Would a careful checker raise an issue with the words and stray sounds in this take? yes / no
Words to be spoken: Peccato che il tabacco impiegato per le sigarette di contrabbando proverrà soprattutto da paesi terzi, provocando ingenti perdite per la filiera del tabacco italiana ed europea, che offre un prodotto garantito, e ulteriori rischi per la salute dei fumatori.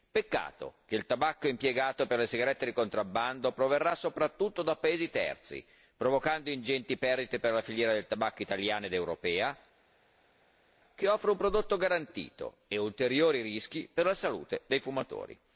no